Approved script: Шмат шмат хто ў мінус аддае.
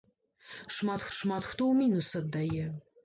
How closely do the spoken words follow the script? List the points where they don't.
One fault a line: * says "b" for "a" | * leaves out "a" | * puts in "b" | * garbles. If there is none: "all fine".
all fine